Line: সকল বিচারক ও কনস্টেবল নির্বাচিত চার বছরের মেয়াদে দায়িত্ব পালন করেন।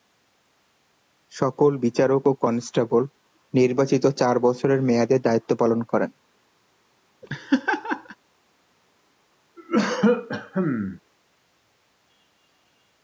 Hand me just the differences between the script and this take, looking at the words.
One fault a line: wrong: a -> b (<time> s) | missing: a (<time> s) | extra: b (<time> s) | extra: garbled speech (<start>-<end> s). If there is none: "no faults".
no faults